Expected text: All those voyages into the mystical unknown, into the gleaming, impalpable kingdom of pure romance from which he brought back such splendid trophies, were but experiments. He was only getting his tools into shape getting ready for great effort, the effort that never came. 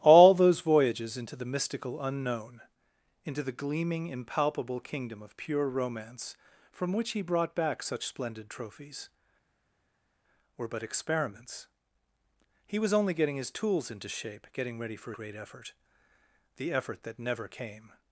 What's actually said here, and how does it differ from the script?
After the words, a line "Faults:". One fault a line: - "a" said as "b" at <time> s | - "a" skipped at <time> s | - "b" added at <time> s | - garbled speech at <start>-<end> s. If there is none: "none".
All those voyages into the mystical unknown, into the gleaming, impalpable kingdom of pure romance from which he brought back such splendid trophies, were but experiments. He was only getting his tools into shape getting ready for great effort, the effort that never came.
Faults:
none